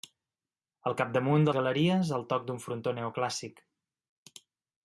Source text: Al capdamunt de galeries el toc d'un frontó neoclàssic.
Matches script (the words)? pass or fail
pass